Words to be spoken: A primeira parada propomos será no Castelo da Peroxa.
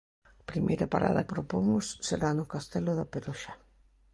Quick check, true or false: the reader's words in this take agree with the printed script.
true